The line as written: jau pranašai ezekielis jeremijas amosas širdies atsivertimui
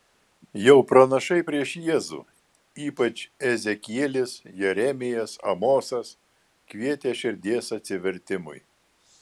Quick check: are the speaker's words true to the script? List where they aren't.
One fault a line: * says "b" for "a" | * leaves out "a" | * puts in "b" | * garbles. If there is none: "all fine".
* puts in "prieš jėzų ypač"
* puts in "kvietė"